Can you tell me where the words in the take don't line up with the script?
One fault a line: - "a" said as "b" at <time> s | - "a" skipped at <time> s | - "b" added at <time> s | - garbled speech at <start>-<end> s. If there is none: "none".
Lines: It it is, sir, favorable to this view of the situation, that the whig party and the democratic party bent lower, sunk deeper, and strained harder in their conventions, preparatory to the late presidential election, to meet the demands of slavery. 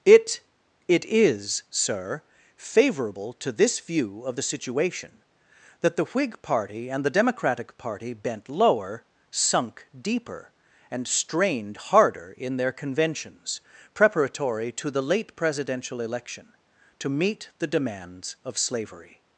none